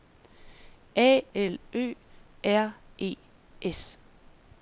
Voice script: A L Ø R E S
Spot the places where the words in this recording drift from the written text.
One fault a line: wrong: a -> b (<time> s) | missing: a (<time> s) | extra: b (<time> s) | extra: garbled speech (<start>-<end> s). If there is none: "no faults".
no faults